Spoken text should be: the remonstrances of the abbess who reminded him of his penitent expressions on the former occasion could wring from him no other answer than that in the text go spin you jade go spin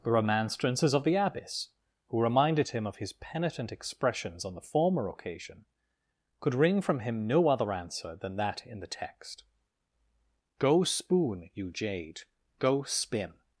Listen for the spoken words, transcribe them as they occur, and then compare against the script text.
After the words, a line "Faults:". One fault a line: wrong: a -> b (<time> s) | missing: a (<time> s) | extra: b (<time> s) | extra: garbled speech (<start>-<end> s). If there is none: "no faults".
the remonstrances of the abbess who reminded him of his penitent expressions on the former occasion could wring from him no other answer than that in the text go spoon you jade go spin
Faults:
wrong: spin -> spoon (10.8 s)